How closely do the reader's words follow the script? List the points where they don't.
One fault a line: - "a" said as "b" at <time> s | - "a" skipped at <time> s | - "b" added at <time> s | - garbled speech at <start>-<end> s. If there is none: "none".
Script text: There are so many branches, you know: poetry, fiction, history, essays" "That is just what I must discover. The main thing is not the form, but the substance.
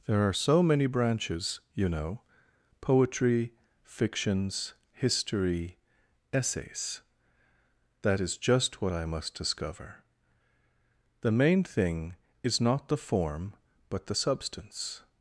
- "fiction" said as "fictions" at 3.8 s